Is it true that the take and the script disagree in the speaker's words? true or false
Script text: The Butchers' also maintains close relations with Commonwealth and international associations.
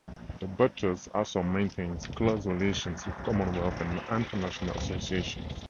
false